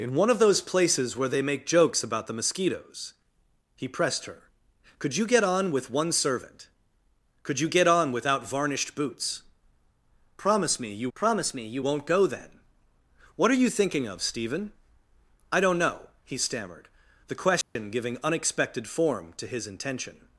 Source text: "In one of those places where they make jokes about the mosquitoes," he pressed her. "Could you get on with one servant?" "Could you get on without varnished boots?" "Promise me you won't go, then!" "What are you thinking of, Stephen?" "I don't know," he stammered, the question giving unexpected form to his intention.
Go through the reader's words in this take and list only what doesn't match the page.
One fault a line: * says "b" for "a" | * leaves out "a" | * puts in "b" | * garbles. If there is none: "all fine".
* puts in "promise me you"